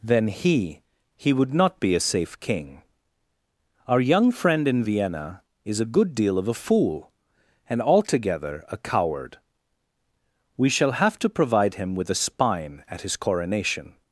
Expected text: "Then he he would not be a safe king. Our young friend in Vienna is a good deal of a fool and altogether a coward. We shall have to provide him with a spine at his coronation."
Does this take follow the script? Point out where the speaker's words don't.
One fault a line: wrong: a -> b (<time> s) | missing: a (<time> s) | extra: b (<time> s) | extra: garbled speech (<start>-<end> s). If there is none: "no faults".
no faults